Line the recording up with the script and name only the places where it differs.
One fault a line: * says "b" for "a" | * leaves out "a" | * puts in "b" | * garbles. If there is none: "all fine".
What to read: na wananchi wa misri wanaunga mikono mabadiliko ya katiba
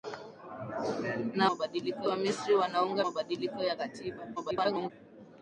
* says "mabadiliko" for "wananchi"
* leaves out "mikono"
* garbles